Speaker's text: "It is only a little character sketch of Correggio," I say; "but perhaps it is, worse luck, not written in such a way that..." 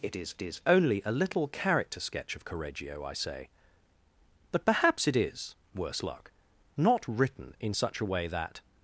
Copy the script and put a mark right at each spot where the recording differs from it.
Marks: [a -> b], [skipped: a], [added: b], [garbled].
"It is [added: is] only a little character sketch of Correggio," I say; "but perhaps it is, worse luck, not written in such a way that..."